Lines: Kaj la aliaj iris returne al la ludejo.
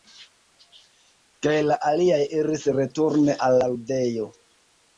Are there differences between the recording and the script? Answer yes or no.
no